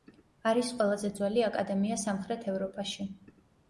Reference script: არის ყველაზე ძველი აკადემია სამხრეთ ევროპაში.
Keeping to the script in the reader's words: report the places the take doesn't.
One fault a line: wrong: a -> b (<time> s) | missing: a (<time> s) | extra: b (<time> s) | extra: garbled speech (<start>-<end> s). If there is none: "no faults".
no faults